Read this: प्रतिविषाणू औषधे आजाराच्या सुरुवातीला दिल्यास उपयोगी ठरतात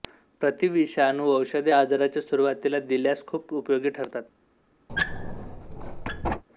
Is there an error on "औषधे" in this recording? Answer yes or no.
no